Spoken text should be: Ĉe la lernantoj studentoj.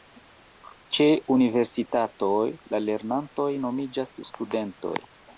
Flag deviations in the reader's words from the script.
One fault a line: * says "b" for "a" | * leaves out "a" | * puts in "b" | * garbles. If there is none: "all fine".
* puts in "universitatoj"
* puts in "nomiĝas"